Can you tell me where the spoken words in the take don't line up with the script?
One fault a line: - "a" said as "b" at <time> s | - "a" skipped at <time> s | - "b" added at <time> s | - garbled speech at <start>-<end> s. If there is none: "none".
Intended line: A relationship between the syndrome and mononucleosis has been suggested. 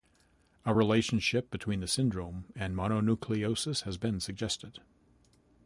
none